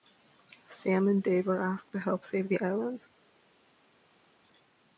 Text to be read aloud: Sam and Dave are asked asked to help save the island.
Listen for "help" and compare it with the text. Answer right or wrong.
right